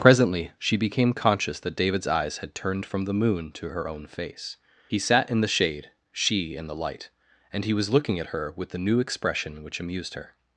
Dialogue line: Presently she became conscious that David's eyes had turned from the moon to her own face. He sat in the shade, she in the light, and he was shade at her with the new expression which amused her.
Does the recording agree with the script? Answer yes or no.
no